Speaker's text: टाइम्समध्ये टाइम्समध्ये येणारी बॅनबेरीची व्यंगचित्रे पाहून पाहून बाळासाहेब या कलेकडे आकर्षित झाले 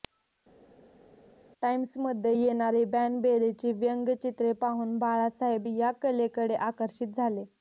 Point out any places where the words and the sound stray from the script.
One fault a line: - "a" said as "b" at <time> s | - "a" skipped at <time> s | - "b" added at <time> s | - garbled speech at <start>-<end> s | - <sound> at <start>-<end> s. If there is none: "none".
- "टाइम्समध्ये" skipped at 2.3 s
- "पाहून" skipped at 5.0 s